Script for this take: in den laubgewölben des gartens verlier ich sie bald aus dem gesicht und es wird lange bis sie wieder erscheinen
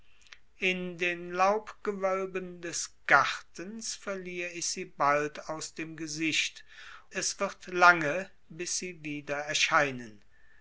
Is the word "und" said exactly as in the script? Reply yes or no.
no